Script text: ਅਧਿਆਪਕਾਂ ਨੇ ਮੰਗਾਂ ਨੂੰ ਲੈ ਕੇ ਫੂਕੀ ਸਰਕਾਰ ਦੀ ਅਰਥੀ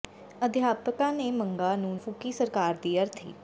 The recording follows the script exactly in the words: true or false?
false